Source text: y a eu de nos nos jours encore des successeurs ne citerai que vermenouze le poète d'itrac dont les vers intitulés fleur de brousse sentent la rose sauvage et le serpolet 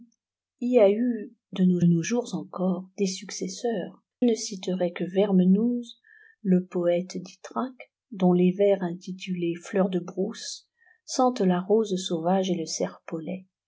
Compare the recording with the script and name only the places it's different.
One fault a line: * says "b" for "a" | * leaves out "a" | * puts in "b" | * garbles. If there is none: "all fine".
all fine